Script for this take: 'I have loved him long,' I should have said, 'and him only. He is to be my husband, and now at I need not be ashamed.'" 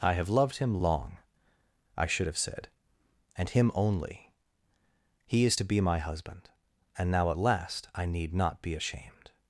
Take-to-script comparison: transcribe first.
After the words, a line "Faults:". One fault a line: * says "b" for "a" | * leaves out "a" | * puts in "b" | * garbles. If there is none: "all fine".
'I have loved him long,' I should have said, 'and him only. He is to be my husband, and now at last I need not be ashamed.'"
Faults:
* puts in "last"